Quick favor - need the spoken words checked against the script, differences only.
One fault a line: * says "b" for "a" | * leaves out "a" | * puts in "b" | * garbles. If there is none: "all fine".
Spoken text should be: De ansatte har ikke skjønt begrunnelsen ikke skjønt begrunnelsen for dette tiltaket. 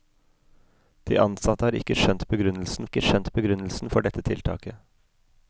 all fine